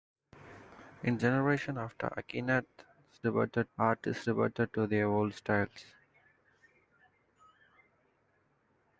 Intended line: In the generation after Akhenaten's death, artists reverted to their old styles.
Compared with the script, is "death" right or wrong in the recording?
wrong